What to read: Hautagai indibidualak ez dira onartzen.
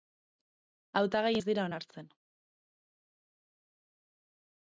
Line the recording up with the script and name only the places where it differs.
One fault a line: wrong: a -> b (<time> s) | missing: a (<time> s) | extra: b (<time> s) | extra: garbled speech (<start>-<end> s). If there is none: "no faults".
missing: indibidualak (1.3 s)